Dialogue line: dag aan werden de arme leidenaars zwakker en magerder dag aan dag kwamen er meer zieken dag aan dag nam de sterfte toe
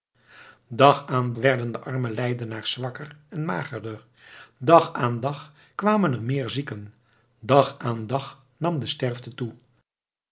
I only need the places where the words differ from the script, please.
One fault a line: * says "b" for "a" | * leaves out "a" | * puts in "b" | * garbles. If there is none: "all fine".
all fine